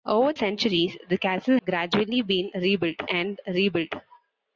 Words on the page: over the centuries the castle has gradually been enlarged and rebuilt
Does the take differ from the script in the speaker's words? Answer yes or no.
yes